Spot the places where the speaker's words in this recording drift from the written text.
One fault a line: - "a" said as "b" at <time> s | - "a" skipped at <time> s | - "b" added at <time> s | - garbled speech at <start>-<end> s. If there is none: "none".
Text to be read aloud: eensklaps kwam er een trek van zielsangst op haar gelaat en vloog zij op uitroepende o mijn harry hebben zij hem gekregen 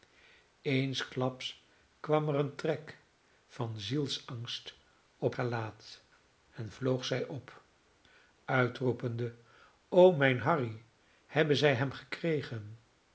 - "haar" skipped at 5.3 s